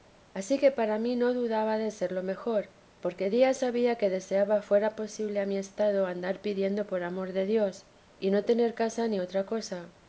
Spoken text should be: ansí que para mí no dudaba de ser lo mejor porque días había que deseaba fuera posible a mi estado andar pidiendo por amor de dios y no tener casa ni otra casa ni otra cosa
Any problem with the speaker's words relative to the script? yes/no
yes